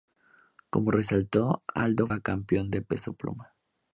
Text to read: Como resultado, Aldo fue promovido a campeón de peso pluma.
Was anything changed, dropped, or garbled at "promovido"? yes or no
yes